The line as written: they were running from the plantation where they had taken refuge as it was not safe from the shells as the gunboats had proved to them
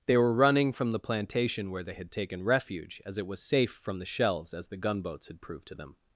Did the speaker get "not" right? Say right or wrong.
wrong